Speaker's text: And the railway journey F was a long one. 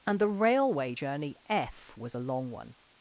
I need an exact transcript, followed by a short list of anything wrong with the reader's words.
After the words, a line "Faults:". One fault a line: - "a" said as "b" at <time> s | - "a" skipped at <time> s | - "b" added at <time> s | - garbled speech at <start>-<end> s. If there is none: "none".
And the railway journey F was a long one.
Faults:
none